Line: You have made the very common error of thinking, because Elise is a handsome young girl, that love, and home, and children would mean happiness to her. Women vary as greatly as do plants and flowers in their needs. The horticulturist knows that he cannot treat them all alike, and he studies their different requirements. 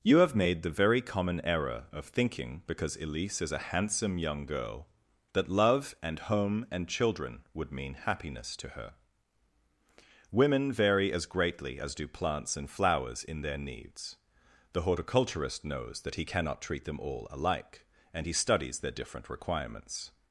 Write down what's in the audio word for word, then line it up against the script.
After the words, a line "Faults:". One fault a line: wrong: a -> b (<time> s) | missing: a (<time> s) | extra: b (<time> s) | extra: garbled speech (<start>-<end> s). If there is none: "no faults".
You have made the very common error of thinking, because Elise is a handsome young girl, that love, and home, and children would mean happiness to her. Women vary as greatly as do plants and flowers in their needs. The horticulturist knows that he cannot treat them all alike, and he studies their different requirements.
Faults:
no faults